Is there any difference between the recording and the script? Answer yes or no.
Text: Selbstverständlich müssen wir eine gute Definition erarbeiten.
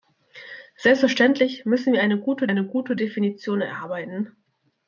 yes